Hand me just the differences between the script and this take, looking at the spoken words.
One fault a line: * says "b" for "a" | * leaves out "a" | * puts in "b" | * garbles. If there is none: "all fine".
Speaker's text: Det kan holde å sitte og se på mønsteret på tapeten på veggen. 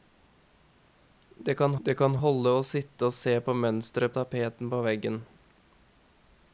* puts in "det kan"
* leaves out "på"